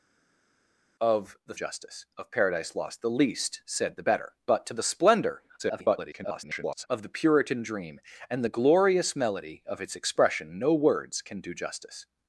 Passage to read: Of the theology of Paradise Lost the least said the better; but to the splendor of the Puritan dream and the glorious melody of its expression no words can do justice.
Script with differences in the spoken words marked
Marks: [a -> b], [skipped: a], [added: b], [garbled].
Of the [theology -> justice] of Paradise Lost the least said the better; but to the splendor [garbled] of the Puritan dream and the glorious melody of its expression no words can do justice.